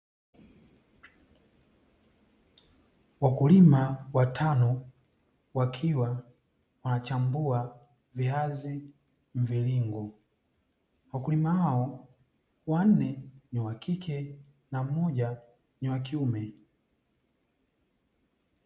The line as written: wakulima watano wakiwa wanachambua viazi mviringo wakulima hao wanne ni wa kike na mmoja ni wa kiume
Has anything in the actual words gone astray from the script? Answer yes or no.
no